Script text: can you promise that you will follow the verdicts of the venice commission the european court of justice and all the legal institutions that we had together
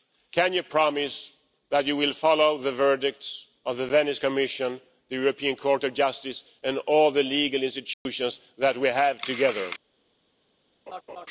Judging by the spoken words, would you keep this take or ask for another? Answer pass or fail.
fail